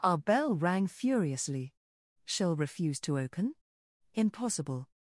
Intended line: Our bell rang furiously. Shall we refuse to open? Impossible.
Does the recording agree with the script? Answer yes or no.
no